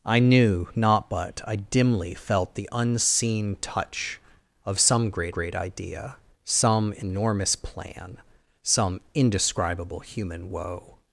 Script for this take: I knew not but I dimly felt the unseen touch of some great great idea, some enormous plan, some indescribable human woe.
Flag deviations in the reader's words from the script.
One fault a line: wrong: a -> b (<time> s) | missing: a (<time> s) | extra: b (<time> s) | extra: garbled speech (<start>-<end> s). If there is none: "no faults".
no faults